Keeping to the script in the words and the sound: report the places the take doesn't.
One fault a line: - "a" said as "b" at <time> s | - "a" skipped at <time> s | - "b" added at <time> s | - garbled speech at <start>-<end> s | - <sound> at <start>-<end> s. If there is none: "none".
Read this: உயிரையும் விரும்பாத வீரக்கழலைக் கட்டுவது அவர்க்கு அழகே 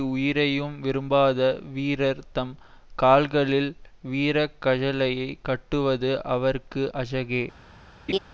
- "வீரர் தம் கால்களில்" added at 1.7 s
- laugh at 8.1-8.2 s